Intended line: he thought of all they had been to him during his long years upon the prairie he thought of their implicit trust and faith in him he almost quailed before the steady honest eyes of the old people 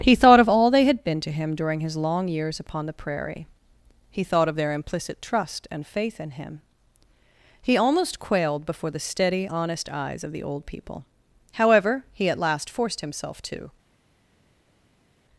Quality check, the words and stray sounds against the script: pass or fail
fail